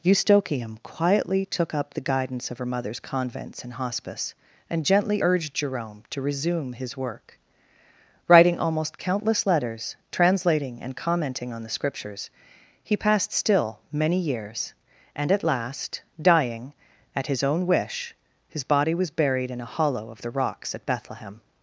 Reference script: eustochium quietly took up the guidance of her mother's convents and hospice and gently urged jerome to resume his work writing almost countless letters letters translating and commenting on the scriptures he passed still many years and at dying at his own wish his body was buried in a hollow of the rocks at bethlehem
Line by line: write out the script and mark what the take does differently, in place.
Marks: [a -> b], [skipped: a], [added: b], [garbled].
eustochium quietly took up the guidance of her mother's convents and hospice and gently urged jerome to resume his work writing almost countless letters [skipped: letters] translating and commenting on the scriptures he passed still many years and at [added: last] dying at his own wish his body was buried in a hollow of the rocks at bethlehem